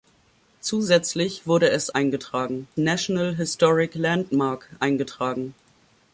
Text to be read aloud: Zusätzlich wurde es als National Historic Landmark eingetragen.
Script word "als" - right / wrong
wrong